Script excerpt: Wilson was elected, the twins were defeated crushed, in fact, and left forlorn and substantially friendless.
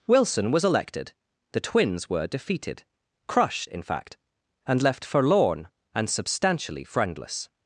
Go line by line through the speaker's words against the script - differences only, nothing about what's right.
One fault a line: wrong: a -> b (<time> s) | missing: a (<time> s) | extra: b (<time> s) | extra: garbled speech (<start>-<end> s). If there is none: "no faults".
no faults